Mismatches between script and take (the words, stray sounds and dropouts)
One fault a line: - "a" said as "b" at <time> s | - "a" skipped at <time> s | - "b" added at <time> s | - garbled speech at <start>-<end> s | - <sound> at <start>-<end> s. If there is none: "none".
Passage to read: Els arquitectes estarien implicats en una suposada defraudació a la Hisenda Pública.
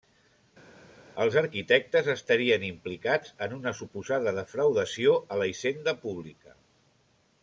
none